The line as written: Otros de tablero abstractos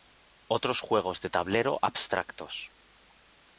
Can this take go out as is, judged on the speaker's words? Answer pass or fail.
fail